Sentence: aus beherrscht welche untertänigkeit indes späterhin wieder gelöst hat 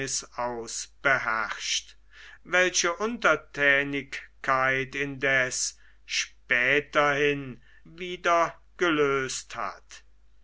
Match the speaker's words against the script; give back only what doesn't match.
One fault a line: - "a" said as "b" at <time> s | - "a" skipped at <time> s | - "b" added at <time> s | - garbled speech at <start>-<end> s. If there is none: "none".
none